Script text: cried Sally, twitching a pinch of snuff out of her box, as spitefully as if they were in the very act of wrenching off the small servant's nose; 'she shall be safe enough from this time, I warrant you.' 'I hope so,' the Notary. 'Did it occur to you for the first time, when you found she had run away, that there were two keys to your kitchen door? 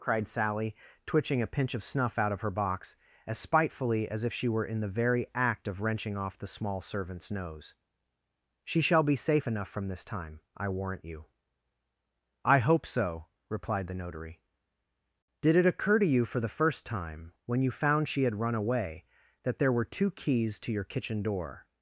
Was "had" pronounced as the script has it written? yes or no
yes